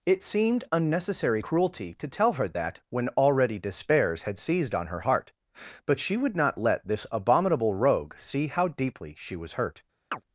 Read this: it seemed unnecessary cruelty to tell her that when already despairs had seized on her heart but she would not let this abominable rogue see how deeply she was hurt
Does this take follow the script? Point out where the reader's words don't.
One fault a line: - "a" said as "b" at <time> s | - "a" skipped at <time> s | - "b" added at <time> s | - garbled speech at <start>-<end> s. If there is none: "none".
none